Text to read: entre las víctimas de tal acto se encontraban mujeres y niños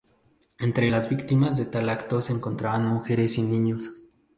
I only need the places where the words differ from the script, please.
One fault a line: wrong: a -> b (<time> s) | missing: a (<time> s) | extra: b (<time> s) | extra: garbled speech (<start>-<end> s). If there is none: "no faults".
no faults